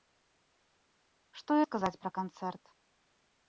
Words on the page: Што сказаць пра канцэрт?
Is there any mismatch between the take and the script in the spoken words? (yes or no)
no